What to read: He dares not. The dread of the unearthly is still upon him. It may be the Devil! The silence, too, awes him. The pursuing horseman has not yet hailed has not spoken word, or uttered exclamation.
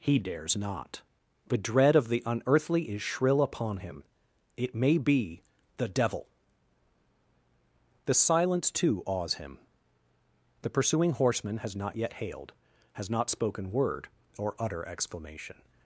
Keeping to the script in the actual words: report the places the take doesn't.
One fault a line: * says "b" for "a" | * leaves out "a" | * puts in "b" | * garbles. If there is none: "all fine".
* says "shrill" for "still"
* says "utter" for "uttered"